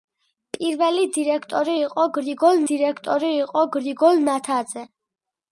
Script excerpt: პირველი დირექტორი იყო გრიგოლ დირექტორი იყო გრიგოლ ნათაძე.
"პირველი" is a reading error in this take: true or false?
false